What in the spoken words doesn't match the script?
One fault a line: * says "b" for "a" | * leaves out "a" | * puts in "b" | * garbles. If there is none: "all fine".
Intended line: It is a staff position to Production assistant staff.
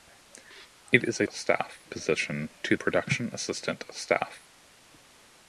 all fine